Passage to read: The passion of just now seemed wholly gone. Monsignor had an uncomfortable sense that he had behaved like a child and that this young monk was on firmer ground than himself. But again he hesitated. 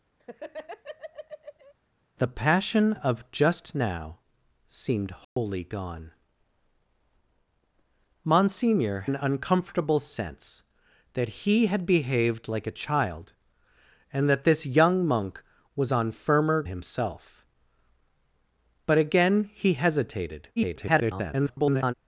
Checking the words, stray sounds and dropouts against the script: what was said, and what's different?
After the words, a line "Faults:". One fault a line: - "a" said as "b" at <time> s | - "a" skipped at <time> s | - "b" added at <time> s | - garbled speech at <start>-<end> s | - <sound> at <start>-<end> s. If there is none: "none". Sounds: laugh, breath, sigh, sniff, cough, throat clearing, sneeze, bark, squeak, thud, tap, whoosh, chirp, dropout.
The passion of just now seemed wholly gone. Monsignor an uncomfortable sense that he had behaved like a child and that this young monk was on firmer himself. But again he hesitated. [garbled]
Faults:
- laugh at 0.2-1.7 s
- dropout at 5.2-5.4 s
- "had" skipped at 9.0 s
- "ground than" skipped at 16.6 s
- garbled speech at 20.6-21.9 s